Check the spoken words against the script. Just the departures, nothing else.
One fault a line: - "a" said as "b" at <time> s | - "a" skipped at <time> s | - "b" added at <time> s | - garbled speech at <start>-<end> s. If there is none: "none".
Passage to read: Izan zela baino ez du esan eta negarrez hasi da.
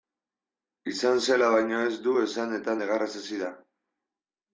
none